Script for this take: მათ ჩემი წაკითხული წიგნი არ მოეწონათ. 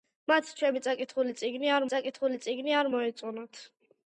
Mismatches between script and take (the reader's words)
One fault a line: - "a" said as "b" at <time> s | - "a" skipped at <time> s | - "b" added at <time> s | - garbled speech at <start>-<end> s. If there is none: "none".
- "წაკითხული წიგნი არ" added at 1.9 s